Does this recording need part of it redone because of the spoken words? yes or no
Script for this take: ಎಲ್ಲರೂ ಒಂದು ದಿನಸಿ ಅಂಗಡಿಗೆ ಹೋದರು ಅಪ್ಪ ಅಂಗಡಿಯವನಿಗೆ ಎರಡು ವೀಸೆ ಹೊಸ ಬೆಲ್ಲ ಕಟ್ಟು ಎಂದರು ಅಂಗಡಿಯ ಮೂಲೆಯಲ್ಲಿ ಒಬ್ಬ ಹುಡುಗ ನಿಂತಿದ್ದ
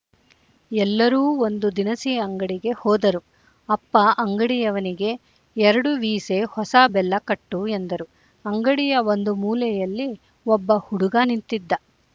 yes